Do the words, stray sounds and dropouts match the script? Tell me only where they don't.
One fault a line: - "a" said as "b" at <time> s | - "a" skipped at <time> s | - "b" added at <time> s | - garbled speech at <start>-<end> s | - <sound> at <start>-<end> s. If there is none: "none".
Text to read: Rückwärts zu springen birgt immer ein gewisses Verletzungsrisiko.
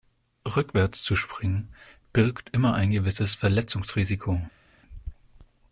none